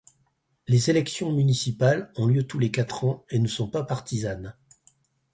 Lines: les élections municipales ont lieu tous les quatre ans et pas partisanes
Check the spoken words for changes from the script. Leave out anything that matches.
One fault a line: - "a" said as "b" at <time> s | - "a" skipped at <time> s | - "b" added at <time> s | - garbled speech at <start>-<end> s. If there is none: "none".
- "ne sont" added at 3.4 s